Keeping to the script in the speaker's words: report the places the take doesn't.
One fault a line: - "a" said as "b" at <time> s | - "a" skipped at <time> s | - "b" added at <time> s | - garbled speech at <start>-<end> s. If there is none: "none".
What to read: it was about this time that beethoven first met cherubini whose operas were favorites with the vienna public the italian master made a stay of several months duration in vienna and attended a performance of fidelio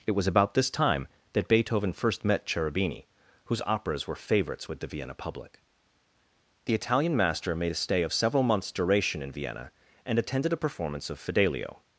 none